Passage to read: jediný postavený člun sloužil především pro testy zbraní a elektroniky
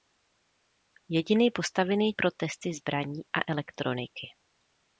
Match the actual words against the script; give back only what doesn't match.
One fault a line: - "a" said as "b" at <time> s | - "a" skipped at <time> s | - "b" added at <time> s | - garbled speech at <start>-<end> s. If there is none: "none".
- "člun sloužil především" skipped at 2.1 s